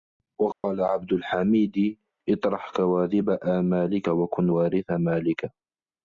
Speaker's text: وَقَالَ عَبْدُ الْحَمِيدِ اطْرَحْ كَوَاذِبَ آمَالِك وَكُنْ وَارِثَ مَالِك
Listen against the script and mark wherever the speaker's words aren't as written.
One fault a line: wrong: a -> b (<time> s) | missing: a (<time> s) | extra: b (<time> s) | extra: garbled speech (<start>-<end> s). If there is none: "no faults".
no faults